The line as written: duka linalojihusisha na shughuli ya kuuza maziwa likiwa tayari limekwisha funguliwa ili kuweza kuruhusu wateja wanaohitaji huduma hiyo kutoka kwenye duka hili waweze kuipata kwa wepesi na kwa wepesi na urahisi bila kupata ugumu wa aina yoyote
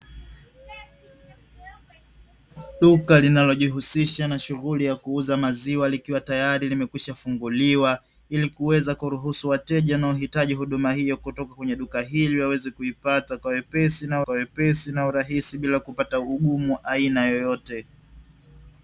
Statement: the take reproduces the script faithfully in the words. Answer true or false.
true